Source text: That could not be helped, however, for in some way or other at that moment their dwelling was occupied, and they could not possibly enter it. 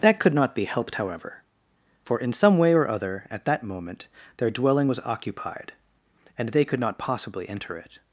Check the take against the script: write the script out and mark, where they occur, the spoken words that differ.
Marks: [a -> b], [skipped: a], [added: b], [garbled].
That could not be helped, however, for in some way or other at that moment their dwelling was occupied, and they could not possibly enter it.